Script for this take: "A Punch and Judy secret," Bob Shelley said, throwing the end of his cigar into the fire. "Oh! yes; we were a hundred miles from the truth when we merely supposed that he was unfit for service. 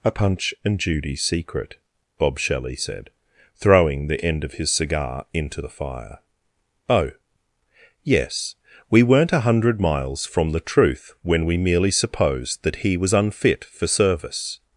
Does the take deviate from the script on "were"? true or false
true